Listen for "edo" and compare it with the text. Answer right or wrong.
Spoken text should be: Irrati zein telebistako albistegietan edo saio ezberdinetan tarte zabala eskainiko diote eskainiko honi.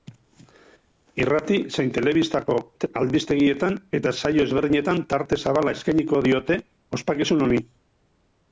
wrong